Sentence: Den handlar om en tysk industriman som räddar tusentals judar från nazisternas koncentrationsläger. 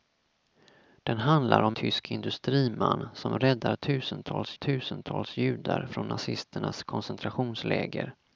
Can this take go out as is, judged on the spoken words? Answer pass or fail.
fail